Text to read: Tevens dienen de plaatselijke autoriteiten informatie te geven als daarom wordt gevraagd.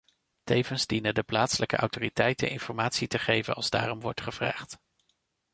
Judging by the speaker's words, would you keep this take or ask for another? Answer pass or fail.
pass